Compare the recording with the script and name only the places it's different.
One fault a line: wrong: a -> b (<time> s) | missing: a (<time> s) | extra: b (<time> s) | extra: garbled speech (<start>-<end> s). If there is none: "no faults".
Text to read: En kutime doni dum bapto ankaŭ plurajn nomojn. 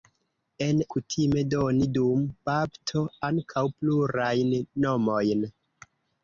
no faults